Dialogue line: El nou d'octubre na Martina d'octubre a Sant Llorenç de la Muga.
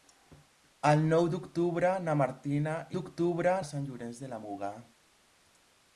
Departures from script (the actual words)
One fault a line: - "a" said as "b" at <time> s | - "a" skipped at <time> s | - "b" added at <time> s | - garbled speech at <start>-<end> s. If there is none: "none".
none